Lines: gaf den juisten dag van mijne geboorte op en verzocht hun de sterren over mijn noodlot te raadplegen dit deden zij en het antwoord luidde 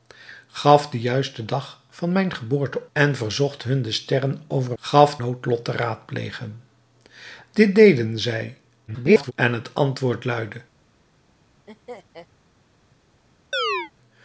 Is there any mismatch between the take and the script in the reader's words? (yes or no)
yes